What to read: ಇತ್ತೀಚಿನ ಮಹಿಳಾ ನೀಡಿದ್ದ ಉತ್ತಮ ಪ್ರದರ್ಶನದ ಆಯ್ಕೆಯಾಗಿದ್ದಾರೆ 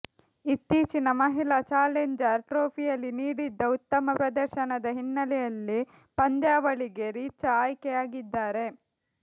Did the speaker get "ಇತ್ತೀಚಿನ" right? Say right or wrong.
right